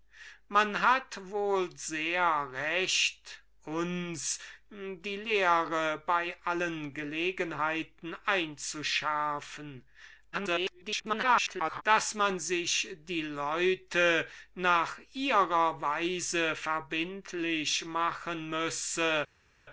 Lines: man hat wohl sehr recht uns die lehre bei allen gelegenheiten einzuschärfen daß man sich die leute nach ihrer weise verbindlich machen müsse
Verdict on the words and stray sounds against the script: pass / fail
fail